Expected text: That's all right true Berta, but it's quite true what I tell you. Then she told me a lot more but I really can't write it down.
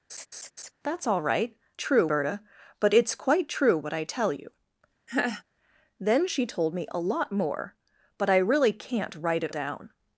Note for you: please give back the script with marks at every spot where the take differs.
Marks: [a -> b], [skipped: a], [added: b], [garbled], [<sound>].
[laugh] That's all right true Berta, but it's quite true what I tell you. [laugh] Then she told me a lot more but I really can't write it down.